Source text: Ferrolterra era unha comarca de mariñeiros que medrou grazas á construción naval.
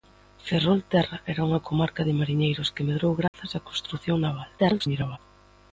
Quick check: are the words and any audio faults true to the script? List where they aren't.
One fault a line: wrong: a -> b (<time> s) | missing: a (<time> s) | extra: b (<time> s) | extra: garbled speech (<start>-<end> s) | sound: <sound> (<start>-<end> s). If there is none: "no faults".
sound: dropout (3.3-3.3 s)
extra: garbled speech (4.6-5.2 s)